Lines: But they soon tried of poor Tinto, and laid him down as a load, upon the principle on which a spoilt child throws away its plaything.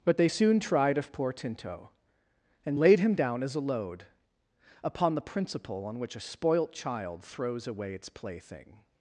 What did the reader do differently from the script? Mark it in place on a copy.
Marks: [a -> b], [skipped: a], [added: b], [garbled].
But they soon tried of poor Tinto, and laid him down as a load, upon the principle on which a spoilt child throws away its plaything.